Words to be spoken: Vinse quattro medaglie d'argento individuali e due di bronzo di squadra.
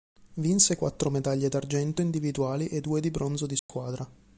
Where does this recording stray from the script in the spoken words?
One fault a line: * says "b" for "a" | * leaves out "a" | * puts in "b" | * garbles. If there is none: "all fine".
all fine